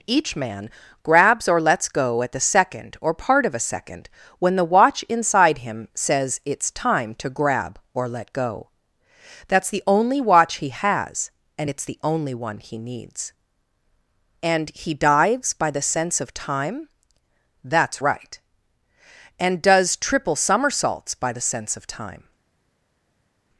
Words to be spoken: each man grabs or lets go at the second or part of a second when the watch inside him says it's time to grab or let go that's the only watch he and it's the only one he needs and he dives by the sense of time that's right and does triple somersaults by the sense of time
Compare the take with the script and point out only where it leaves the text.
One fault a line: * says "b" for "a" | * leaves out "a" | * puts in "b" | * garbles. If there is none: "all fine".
* puts in "has"